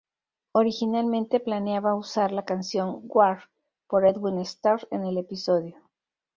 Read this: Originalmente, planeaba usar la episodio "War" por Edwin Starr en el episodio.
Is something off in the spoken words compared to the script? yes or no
yes